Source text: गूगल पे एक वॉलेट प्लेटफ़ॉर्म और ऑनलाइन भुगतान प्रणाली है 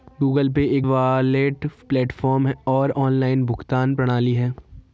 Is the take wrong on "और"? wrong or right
right